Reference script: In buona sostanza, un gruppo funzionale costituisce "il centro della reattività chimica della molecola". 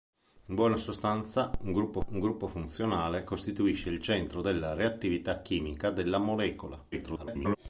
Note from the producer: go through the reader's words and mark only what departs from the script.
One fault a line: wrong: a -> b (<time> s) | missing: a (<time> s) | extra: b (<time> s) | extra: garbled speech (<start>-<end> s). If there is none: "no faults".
extra: un gruppo (2.1 s)
extra: garbled speech (6.9-7.6 s)